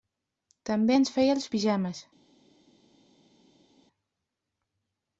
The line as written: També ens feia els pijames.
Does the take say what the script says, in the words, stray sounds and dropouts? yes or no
yes